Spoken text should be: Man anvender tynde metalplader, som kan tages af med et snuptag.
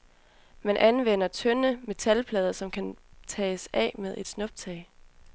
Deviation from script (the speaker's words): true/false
false